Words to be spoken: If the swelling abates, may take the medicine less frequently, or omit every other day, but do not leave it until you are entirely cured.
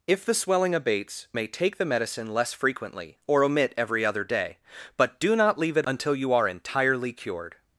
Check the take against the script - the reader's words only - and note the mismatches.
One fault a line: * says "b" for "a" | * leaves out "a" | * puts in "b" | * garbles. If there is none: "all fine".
all fine